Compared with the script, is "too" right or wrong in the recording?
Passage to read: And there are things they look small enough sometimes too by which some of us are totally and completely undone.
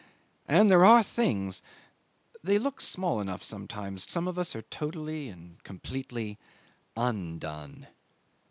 wrong